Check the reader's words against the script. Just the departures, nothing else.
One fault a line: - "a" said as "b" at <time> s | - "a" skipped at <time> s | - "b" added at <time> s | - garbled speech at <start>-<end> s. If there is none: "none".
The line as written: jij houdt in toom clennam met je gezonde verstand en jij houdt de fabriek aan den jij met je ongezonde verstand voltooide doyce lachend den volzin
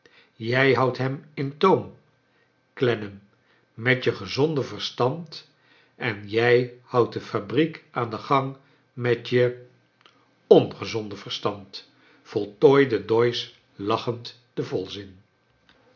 - "hem" added at 1.0 s
- "jij" said as "gang" at 8.2 s